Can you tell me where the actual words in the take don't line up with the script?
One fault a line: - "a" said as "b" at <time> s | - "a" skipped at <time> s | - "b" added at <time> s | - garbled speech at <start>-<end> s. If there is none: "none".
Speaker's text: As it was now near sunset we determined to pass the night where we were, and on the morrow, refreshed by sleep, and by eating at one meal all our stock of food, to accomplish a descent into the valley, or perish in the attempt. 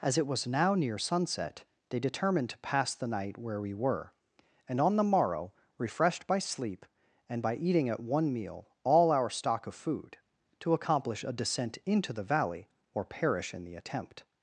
- "we" said as "they" at 1.9 s